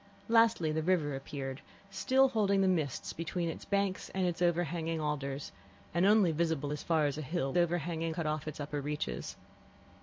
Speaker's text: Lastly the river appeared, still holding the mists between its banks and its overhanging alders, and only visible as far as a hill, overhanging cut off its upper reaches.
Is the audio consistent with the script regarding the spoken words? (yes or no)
yes